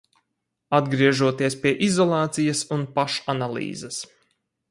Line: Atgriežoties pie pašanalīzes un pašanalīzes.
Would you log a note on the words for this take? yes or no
yes